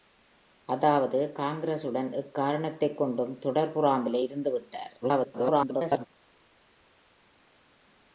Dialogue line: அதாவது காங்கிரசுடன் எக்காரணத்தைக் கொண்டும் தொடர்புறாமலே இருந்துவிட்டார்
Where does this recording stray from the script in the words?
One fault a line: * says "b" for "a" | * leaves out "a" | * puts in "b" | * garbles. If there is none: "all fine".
* garbles